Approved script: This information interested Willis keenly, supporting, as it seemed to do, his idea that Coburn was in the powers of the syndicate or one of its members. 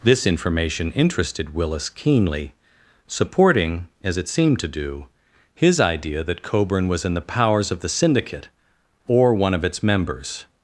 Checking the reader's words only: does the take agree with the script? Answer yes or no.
yes